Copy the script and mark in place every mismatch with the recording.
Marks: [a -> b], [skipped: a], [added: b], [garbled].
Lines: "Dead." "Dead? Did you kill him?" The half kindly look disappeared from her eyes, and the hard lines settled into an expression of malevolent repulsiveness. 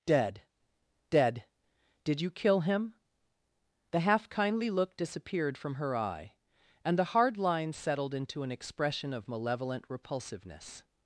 "Dead." "Dead? Did you kill him?" The half kindly look disappeared from her [eyes, -> eye] and the hard lines settled into an expression of malevolent repulsiveness.